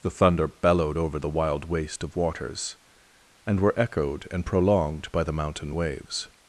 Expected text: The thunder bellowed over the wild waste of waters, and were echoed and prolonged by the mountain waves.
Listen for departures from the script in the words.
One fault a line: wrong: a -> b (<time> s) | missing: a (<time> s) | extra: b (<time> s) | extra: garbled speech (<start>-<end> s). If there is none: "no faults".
no faults